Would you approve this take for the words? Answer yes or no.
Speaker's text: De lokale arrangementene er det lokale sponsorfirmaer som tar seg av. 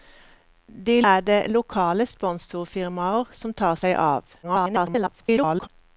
no